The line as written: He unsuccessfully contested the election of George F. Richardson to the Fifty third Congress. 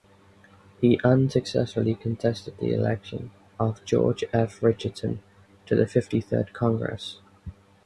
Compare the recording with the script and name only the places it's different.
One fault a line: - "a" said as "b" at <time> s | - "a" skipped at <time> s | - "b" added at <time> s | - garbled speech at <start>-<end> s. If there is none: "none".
none